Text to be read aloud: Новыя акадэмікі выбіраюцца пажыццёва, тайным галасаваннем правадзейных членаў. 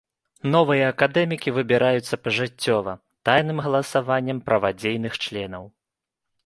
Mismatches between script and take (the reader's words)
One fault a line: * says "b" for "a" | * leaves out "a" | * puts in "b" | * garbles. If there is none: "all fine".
all fine